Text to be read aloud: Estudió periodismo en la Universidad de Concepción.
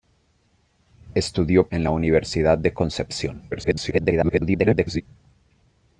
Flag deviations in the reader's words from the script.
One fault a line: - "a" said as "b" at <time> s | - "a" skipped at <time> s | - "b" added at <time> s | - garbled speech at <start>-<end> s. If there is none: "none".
- "periodismo" skipped at 1.7 s
- garbled speech at 3.5-5.0 s